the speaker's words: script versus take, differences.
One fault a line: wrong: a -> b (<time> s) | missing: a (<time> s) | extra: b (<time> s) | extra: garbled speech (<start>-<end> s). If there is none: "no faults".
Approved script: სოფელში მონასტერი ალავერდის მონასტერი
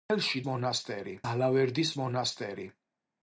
no faults